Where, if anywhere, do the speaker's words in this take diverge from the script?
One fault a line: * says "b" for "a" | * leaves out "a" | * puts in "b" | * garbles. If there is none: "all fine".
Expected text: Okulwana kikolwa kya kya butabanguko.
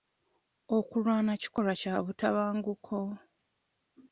* leaves out "kya"